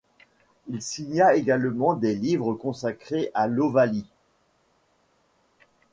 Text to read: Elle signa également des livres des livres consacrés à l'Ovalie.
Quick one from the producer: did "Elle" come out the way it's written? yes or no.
no